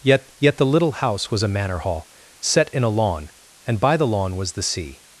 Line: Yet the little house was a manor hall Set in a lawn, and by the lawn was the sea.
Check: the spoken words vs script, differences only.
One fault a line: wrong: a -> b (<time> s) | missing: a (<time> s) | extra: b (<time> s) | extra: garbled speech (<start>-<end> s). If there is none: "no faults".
extra: yet (0.4 s)